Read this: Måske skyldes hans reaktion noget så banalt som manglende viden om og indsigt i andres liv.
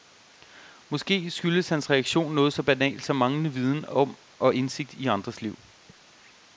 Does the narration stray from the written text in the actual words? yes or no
no